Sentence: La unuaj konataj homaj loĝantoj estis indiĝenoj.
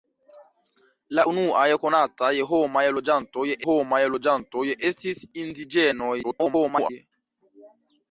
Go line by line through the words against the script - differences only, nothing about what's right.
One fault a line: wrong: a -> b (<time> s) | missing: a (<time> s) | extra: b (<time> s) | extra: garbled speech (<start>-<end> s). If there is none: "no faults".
extra: homaj loĝantoj (3.7 s)
extra: garbled speech (6.2-6.9 s)